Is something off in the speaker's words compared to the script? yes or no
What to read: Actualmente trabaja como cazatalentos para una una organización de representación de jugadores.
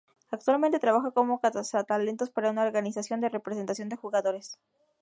yes